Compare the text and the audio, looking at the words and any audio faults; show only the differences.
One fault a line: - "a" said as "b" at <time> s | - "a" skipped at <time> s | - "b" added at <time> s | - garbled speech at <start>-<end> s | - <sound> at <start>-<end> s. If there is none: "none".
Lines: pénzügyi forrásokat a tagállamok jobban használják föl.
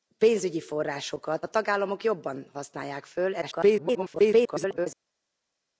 - garbled speech at 3.4-4.9 s